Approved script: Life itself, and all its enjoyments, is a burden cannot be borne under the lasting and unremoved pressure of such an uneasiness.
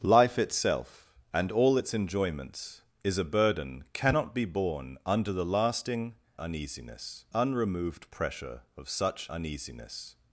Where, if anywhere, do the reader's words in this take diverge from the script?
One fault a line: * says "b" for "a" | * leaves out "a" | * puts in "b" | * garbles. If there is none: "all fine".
* says "uneasiness" for "and"
* leaves out "an"